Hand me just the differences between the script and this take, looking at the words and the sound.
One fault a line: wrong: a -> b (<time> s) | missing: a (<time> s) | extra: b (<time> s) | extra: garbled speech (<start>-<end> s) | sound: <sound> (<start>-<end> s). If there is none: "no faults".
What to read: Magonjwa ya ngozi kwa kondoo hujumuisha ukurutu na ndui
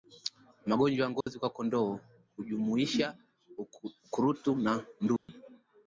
sound: dropout (1.2-1.3 s)
sound: dropout (5.2-5.3 s)